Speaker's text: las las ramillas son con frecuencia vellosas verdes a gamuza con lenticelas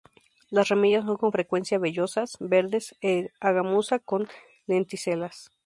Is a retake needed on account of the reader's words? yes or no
yes